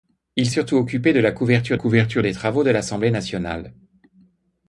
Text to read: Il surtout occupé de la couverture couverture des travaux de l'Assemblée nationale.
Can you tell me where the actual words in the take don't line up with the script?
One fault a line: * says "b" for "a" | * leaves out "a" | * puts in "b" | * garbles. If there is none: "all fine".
all fine